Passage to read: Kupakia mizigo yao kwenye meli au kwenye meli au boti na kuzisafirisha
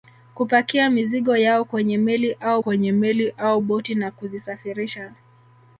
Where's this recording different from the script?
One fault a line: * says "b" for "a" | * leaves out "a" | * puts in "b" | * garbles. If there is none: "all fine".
all fine